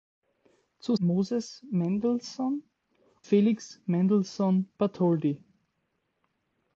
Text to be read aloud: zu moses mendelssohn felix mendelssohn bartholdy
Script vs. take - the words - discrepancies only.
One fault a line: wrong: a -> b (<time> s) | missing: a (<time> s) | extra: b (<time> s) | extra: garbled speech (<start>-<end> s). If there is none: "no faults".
no faults